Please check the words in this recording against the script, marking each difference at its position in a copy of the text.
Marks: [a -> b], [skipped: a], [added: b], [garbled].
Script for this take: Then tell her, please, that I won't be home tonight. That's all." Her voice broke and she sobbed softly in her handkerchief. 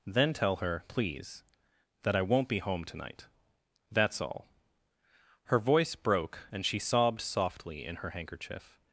Then tell her, please, that I won't be home tonight. That's all." Her voice broke and she sobbed softly in her handkerchief.